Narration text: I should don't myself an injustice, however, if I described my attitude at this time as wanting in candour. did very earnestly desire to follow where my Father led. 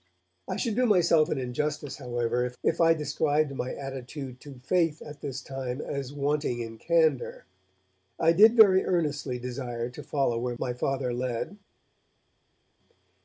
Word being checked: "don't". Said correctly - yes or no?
no